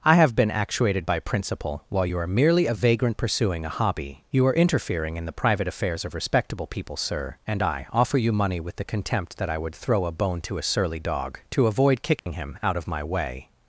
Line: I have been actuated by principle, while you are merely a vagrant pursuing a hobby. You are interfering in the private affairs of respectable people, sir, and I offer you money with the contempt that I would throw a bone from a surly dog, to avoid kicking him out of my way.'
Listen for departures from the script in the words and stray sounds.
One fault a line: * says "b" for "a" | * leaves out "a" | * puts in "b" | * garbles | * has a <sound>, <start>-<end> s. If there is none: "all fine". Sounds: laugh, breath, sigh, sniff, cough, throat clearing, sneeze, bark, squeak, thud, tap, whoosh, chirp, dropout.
* says "to" for "from"
* has a dropout, 12.2-12.3 s